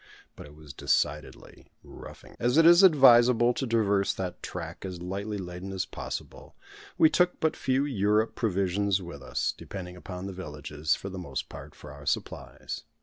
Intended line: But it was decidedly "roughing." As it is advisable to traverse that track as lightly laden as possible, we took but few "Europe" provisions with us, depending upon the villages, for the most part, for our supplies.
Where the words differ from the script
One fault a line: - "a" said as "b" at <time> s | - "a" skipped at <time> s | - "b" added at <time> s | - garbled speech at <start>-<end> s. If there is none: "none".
none